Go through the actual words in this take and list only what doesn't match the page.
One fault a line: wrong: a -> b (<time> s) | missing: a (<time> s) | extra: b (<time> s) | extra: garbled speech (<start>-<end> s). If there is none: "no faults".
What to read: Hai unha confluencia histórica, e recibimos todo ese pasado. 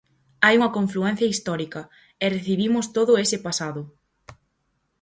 no faults